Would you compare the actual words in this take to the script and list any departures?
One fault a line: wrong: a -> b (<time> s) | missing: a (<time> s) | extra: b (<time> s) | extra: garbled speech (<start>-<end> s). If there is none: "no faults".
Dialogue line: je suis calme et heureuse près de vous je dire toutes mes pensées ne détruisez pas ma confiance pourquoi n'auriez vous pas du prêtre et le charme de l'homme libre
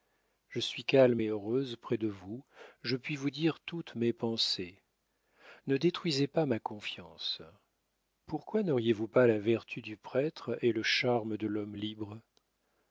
extra: puis vous (3.0 s)
extra: la vertu (9.3 s)